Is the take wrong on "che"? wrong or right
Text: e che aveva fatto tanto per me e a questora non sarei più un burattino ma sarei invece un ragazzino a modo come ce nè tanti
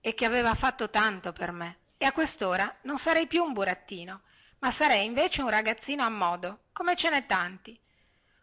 right